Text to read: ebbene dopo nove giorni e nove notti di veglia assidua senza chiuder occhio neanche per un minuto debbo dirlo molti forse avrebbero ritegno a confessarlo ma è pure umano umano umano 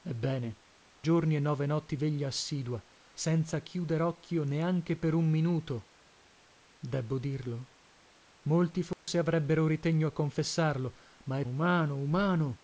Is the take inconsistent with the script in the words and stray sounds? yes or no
yes